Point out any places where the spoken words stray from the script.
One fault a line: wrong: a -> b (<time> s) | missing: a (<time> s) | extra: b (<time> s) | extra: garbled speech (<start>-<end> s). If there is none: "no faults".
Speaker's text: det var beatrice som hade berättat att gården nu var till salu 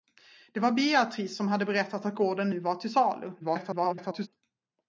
extra: garbled speech (3.4-4.3 s)